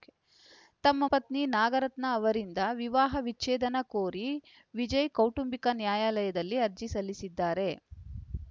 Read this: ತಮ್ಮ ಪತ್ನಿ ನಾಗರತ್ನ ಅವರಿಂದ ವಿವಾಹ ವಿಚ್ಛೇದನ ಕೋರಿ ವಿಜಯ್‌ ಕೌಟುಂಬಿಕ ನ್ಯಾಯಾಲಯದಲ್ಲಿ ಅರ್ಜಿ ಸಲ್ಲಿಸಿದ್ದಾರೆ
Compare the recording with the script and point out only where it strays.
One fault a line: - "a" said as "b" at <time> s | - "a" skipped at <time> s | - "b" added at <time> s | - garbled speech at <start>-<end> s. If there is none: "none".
none